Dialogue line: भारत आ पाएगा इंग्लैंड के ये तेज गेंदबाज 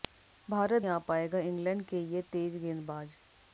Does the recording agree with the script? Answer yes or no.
yes